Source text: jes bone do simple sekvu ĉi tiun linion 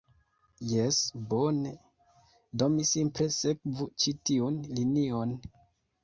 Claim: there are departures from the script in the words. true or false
true